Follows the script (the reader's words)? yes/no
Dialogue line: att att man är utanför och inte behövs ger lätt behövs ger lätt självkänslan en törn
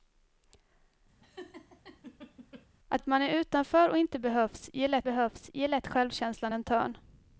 yes